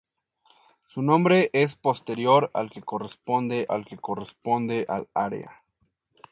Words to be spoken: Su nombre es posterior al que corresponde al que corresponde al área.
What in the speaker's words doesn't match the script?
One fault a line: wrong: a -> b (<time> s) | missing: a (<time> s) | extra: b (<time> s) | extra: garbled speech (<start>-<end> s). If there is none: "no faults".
no faults